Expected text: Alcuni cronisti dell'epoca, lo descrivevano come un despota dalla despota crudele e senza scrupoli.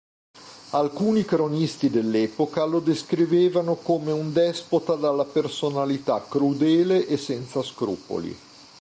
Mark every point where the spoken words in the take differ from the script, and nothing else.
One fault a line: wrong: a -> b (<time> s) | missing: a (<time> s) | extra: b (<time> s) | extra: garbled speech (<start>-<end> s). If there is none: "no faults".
wrong: despota -> personalità (5.2 s)